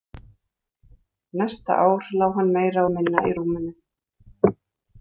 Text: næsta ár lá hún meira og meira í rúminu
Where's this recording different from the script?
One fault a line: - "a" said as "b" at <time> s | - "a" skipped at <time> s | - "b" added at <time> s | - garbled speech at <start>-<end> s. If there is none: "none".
- "hún" said as "hann" at 2.4 s
- "meira" said as "minna" at 2.9 s